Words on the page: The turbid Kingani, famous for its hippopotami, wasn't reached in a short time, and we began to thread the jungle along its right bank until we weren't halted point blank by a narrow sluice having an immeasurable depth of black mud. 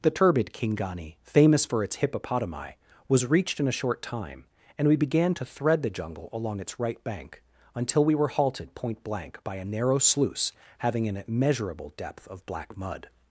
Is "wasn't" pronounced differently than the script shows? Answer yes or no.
yes